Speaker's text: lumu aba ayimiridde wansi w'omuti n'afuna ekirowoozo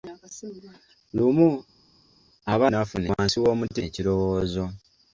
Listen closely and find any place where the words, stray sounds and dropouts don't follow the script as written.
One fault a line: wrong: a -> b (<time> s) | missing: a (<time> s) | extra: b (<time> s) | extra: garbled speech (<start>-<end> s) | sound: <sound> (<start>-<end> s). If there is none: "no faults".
wrong: ayimiridde -> n'afuna (2.7 s)
missing: n'afuna (3.8 s)